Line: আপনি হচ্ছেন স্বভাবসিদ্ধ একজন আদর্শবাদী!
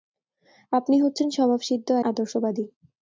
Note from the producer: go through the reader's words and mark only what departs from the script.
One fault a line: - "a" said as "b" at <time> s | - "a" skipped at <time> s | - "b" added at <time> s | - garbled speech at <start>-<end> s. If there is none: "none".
- "একজন" skipped at 1.9 s